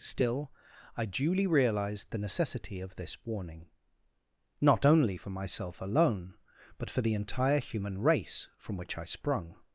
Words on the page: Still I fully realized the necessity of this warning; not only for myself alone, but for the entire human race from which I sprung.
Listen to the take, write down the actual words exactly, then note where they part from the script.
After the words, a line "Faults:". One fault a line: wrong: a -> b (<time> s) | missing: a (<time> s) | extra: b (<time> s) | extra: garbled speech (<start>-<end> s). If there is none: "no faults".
Still I duly realized the necessity of this warning; not only for myself alone, but for the entire human race from which I sprung.
Faults:
wrong: fully -> duly (1.1 s)